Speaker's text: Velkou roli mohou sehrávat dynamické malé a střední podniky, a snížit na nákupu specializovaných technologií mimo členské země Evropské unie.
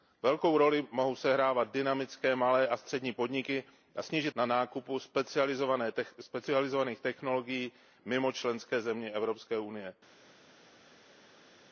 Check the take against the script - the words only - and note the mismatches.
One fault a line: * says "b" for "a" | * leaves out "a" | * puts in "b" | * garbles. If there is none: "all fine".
all fine